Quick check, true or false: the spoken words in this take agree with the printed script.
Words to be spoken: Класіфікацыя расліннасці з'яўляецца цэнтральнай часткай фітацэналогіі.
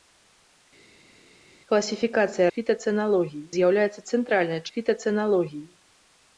false